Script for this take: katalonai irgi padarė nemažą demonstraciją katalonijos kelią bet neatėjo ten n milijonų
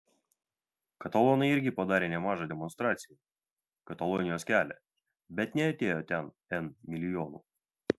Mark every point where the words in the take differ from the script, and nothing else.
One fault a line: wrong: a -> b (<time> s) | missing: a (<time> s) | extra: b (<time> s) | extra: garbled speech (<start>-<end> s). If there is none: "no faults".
no faults